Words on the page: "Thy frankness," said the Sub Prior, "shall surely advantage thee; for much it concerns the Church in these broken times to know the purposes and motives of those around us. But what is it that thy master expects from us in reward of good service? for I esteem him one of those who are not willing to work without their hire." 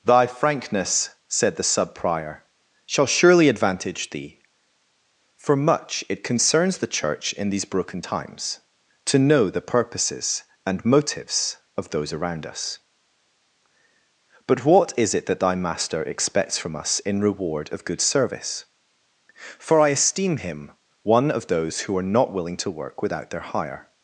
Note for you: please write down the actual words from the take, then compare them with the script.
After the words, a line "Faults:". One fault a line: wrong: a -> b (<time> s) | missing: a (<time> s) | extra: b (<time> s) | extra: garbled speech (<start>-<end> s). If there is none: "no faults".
"Thy frankness," said the Sub Prior, "shall surely advantage thee; for much it concerns the Church in these broken times to know the purposes and motives of those around us. But what is it that thy master expects from us in reward of good service? for I esteem him one of those who are not willing to work without their hire."
Faults:
no faults